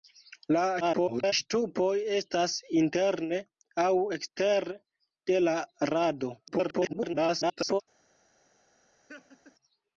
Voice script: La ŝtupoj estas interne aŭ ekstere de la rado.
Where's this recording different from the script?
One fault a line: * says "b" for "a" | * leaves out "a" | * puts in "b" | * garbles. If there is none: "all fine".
* garbles
* garbles